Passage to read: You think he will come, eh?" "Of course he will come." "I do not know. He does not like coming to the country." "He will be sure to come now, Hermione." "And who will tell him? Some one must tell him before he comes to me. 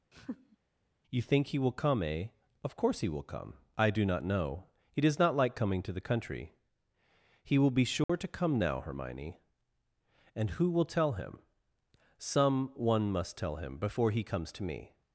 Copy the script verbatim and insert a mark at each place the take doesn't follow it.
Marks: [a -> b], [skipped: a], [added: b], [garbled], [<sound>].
[laugh] You think he will come, eh?" "Of course he will come." "I do not know. He does not like coming to the country." "He will be sure [dropout] to come now, Hermione." "And who will tell him? Some one must tell him before he comes to me.